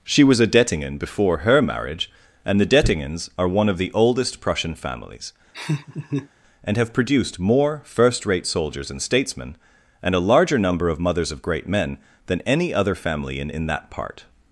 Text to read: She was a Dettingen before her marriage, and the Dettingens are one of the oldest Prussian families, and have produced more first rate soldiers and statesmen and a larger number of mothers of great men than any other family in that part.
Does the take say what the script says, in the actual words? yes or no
no